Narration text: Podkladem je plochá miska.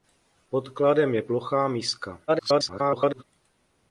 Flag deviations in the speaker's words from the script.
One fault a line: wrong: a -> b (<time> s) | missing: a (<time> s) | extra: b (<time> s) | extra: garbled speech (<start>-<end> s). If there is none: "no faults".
extra: garbled speech (2.3-3.2 s)